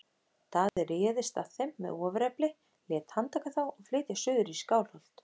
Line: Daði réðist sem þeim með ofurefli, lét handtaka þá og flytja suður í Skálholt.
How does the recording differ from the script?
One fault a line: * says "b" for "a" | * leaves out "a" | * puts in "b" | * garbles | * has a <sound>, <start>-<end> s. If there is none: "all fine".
* has a dropout, 0.7-0.8 s
* says "að" for "sem"